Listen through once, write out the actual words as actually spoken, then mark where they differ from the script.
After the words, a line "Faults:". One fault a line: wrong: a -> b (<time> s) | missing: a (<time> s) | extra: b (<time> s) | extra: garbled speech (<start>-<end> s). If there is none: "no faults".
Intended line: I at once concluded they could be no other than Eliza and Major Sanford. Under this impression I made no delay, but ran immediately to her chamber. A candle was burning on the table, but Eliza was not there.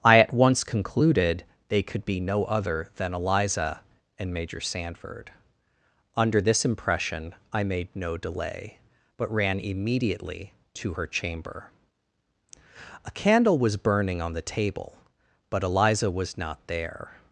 I at once concluded they could be no other than Eliza and Major Sanford. Under this impression I made no delay, but ran immediately to her chamber. A candle was burning on the table, but Eliza was not there.
Faults:
no faults